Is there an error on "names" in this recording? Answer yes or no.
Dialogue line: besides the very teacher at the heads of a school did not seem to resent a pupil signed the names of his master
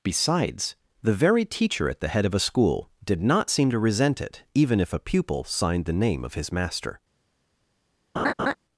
yes